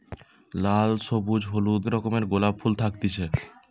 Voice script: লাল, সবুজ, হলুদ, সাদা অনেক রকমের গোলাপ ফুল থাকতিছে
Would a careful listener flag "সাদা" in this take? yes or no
yes